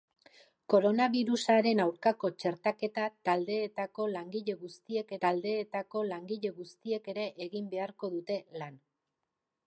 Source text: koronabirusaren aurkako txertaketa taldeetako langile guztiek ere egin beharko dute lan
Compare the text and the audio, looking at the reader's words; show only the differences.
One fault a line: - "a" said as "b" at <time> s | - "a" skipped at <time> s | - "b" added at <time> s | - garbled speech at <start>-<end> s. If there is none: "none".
- "taldeetako langile guztiek" added at 5.3 s